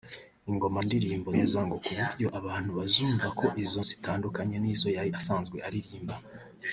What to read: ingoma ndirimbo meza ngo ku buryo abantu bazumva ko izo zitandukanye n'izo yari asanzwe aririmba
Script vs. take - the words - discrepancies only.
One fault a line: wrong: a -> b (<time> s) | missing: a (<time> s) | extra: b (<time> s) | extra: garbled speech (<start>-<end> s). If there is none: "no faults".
no faults